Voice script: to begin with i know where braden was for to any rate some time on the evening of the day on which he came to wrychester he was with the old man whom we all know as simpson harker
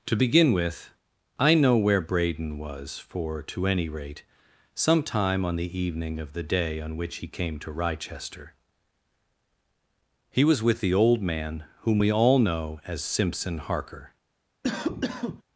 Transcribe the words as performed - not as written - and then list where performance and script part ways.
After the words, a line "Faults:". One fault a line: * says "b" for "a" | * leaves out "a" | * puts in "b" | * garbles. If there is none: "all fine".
to begin with i know where braden was for to any rate some time on the evening of the day on which he came to wrychester he was with the old man whom we all know as simpson harker
Faults:
all fine